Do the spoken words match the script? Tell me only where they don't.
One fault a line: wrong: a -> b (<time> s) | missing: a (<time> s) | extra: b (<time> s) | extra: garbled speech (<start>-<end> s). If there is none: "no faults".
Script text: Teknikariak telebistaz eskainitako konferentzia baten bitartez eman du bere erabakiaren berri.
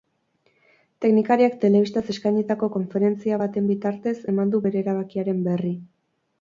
no faults